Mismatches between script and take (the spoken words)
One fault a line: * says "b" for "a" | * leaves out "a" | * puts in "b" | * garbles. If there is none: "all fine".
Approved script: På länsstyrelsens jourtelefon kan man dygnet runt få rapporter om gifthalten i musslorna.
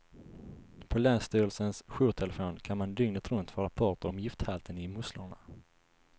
all fine